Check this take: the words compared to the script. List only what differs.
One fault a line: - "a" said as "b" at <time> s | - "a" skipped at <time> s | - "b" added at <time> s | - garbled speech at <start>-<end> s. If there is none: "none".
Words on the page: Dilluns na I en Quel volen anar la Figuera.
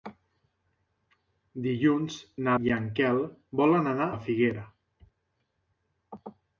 none